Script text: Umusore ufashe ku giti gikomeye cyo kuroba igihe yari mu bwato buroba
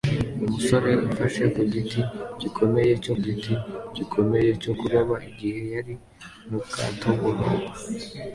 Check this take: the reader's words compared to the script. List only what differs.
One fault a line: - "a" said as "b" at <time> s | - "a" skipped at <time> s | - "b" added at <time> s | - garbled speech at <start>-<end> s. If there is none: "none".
- "giti gikomeye cyo" added at 3.2 s